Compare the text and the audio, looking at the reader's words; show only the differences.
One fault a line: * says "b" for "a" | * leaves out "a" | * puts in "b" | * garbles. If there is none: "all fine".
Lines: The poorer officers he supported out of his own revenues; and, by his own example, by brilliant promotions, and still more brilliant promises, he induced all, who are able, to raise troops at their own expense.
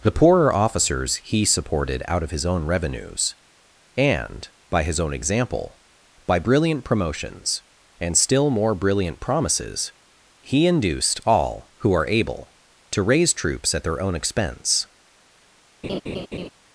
all fine